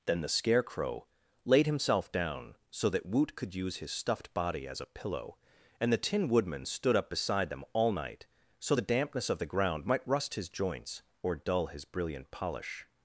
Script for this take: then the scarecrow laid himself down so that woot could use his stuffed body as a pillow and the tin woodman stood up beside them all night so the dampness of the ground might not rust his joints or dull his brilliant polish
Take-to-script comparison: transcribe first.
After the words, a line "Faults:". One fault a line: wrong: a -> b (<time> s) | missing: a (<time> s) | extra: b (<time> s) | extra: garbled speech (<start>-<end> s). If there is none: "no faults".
then the scarecrow laid himself down so that woot could use his stuffed body as a pillow and the tin woodman stood up beside them all night so the dampness of the ground might rust his joints or dull his brilliant polish
Faults:
missing: not (10.1 s)